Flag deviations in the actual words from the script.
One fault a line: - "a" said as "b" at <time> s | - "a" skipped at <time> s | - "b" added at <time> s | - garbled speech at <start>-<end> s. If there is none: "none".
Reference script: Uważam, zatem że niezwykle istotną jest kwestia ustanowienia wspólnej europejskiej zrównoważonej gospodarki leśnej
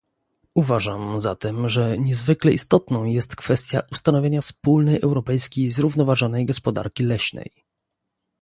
none